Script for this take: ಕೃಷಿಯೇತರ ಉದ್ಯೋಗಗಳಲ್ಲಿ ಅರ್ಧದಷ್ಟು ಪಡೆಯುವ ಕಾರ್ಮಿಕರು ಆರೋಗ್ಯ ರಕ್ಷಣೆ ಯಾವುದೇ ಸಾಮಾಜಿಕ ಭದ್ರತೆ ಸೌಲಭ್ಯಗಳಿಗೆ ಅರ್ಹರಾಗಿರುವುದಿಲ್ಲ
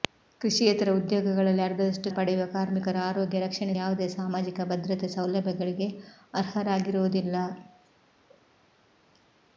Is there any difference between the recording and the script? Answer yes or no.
no